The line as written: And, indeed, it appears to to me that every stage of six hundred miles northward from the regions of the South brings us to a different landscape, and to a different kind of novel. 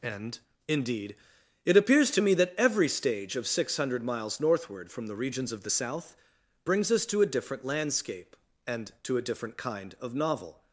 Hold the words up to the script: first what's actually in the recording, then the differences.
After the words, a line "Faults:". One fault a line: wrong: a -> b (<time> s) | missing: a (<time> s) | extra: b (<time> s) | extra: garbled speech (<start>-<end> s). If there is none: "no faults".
And, indeed, it appears to me that every stage of six hundred miles northward from the regions of the South brings us to a different landscape, and to a different kind of novel.
Faults:
missing: to (2.2 s)